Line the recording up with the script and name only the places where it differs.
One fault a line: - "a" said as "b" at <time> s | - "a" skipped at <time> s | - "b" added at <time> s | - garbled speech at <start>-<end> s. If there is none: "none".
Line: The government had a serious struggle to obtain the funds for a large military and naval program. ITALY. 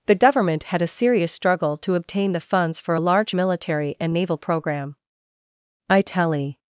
none